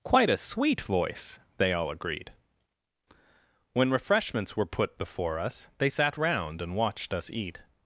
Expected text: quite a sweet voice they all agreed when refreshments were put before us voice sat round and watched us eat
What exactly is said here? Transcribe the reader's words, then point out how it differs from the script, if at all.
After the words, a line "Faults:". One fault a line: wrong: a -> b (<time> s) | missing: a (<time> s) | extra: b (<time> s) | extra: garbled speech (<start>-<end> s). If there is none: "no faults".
quite a sweet voice they all agreed when refreshments were put before us they sat round and watched us eat
Faults:
wrong: voice -> they (5.8 s)